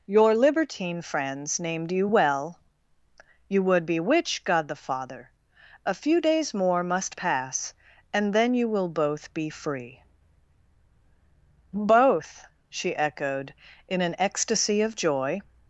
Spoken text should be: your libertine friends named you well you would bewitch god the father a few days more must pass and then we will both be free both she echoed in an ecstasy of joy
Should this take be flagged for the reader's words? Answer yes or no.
yes